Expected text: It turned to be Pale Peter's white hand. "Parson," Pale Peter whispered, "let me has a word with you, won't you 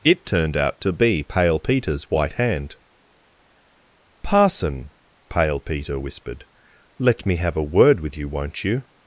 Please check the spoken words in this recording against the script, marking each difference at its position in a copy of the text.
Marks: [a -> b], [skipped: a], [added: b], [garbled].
It turned [added: out] to be Pale Peter's white hand. "Parson," Pale Peter whispered, "let me [has -> have] a word with you, won't you